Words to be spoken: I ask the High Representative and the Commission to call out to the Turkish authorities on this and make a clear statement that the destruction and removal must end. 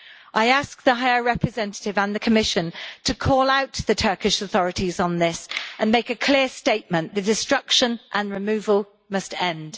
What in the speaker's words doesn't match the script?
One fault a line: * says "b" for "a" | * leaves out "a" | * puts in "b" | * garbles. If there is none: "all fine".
* leaves out "that"